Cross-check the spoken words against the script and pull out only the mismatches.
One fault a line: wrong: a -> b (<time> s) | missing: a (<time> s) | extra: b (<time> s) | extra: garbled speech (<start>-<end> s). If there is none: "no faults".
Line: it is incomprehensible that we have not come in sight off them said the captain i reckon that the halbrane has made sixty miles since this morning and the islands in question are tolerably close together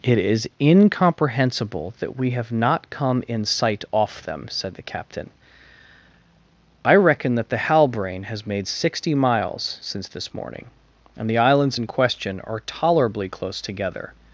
no faults